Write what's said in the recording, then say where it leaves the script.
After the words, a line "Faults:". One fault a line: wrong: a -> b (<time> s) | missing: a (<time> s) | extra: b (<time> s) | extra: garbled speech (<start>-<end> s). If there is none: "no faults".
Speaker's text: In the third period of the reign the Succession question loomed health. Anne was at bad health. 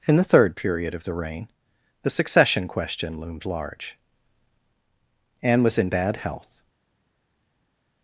In the third period of the reign the Succession question loomed large. Anne was in bad health.
Faults:
wrong: health -> large (3.5 s)
wrong: at -> in (5.8 s)